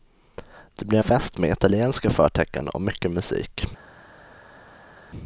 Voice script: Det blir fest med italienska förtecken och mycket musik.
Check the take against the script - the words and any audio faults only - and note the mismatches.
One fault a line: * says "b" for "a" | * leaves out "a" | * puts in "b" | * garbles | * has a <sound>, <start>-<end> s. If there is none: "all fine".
all fine